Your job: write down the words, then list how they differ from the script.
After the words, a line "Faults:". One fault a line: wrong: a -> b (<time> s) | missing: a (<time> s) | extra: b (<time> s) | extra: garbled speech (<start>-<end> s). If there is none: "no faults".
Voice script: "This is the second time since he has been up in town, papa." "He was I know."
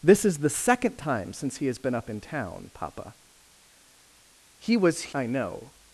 "This is the second time since he has been up in town, papa." "He was I know."
Faults:
no faults